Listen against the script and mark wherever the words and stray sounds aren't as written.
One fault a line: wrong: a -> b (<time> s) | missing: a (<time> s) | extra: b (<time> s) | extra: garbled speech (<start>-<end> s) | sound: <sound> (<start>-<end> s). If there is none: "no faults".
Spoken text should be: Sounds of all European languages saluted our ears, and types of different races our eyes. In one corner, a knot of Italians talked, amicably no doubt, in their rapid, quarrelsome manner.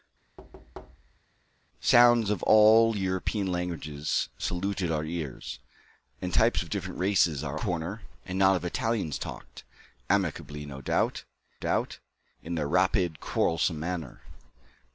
sound: thud (0.4-1.2 s)
missing: eyes In one (7.6 s)
extra: doubt (11.6 s)